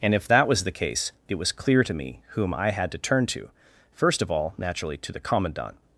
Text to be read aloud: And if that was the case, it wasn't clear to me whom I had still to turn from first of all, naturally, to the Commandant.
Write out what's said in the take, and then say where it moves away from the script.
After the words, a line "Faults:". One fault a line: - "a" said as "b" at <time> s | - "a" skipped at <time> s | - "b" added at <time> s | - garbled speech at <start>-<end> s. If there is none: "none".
And if that was the case, it was clear to me whom I had to turn to first of all, naturally, to the Commandant.
Faults:
- "wasn't" said as "was" at 1.3 s
- "still" skipped at 2.9 s
- "from" said as "to" at 3.3 s